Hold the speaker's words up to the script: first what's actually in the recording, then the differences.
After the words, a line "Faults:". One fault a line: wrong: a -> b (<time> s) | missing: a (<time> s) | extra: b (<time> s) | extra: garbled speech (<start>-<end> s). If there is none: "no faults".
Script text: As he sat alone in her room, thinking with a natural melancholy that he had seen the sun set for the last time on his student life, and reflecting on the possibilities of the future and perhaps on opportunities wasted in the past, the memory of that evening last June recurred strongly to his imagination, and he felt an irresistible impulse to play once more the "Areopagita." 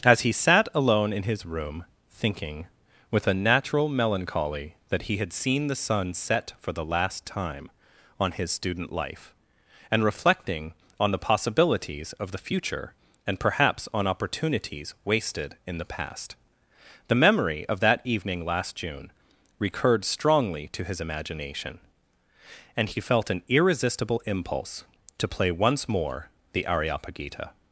As he sat alone in his room, thinking with a natural melancholy that he had seen the sun set for the last time on his student life, and reflecting on the possibilities of the future and perhaps on opportunities wasted in the past, the memory of that evening last June recurred strongly to his imagination, and he felt an irresistible impulse to play once more the "Areopagita."
Faults:
wrong: her -> his (1.2 s)